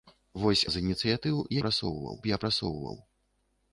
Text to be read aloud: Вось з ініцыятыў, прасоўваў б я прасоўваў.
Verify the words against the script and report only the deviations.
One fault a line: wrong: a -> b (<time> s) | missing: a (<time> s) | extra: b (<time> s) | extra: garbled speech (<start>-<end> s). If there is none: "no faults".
no faults